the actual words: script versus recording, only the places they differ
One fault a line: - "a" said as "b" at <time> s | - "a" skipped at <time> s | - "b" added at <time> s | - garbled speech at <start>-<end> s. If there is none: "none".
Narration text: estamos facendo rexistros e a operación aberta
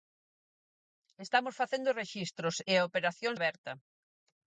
none